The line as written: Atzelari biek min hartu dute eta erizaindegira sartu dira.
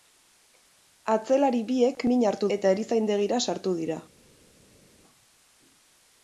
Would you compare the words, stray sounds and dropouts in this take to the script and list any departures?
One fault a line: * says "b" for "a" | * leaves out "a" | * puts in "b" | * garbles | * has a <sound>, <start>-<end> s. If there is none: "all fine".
* leaves out "dute"